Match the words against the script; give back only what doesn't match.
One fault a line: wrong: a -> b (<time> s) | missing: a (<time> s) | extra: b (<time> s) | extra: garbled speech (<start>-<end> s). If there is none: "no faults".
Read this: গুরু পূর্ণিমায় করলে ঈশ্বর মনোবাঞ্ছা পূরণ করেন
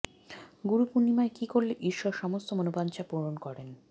extra: কী (1.3 s)
extra: সমস্ত (2.1 s)